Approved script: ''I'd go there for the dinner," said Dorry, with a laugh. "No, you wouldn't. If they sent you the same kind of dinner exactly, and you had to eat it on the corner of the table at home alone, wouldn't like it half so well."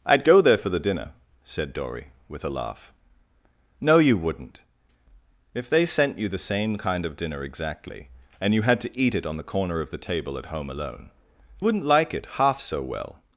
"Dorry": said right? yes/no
yes